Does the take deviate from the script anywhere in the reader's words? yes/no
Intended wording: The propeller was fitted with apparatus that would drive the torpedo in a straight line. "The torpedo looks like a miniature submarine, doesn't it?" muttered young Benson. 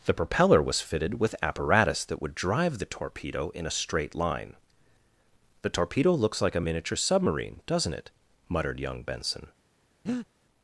no